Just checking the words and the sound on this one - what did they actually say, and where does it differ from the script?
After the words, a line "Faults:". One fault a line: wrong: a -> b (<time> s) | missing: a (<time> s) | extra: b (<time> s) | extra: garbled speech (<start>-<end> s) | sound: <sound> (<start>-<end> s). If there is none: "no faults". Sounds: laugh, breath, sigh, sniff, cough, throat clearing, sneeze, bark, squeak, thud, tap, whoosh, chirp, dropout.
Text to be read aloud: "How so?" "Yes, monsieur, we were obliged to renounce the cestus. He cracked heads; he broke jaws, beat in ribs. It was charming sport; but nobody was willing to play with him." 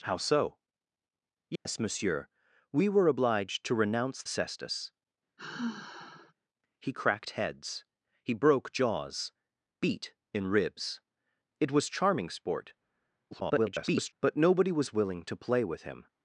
"How so?" "Yes, monsieur, we were obliged to renounce cestus. He cracked heads; he broke jaws, beat in ribs. It was charming sport; [garbled] but nobody was willing to play with him."
Faults:
sound: dropout (1.6-1.7 s)
missing: the (4.2 s)
sound: sigh (5.4-6.3 s)
extra: garbled speech (13.3-14.1 s)